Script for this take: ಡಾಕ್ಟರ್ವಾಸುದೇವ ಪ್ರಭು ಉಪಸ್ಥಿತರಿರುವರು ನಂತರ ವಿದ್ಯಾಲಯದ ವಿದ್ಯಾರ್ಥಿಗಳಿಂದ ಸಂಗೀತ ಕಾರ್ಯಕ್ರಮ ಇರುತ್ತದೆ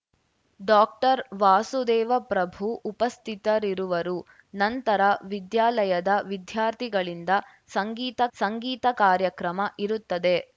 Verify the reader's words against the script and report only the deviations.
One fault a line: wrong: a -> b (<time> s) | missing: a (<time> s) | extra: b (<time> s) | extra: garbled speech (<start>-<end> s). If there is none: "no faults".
extra: ಸಂಗೀತ (8.4 s)